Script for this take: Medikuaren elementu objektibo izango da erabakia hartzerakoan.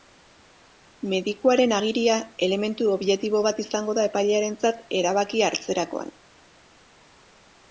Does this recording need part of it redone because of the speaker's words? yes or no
yes